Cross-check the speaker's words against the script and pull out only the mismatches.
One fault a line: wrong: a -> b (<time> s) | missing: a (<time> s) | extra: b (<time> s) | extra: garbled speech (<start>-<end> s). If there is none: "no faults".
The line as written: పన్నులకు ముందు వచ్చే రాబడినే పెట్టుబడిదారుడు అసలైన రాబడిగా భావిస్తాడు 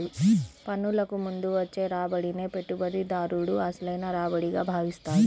no faults